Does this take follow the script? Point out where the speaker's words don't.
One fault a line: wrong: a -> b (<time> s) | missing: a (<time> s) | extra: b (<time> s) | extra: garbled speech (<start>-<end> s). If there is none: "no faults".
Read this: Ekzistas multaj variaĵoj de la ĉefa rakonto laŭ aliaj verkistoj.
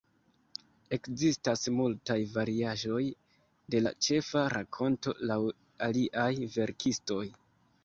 no faults